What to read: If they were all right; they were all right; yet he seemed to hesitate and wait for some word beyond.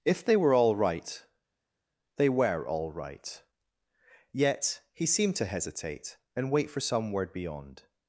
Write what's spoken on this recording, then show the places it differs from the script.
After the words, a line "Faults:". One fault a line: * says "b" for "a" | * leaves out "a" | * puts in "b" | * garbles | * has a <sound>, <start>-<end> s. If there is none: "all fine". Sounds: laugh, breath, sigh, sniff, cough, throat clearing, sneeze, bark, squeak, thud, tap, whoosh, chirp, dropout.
If they were all right; they were all right; yet he seemed to hesitate and wait for some word beyond.
Faults:
all fine